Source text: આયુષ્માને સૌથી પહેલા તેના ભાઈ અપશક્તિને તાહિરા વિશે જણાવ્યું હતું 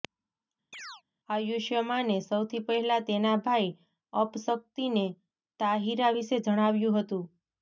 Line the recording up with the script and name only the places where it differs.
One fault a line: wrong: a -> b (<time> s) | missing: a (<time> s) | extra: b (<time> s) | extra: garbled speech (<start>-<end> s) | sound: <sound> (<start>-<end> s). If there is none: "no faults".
sound: chirp (0.7-1.0 s)